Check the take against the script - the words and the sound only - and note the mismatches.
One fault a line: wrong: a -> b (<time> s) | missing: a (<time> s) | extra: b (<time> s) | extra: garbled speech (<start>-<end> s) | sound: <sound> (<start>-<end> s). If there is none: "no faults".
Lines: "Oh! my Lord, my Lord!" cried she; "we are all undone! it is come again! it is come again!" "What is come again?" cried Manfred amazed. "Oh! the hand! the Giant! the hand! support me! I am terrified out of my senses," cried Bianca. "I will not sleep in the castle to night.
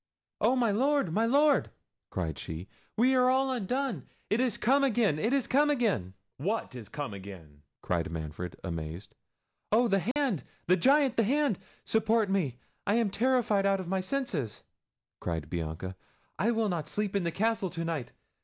sound: dropout (10.1-10.2 s)